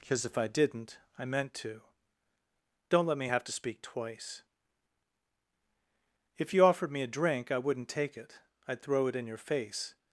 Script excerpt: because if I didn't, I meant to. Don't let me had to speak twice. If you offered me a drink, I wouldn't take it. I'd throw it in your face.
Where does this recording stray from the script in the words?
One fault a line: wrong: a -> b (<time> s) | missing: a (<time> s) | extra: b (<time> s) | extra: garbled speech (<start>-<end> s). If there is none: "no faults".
wrong: had -> have (3.3 s)